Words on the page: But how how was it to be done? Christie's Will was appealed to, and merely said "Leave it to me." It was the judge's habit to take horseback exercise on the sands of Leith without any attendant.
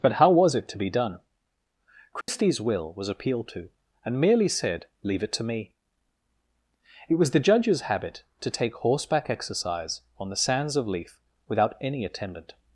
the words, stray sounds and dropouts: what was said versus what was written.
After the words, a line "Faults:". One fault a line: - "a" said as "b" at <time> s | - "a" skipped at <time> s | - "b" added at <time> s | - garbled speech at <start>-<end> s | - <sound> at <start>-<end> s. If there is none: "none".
But how was it to be done? Christie's Will was appealed to, and merely said "Leave it to me." It was the judge's habit to take horseback exercise on the sands of Leith without any attendant.
Faults:
- "how" skipped at 0.3 s
- dropout at 2.2-2.3 s